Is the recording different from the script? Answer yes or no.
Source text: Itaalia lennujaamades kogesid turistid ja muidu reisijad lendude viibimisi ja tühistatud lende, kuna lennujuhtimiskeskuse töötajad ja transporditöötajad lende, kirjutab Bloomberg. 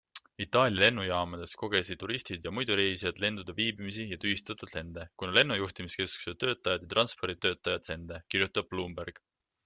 no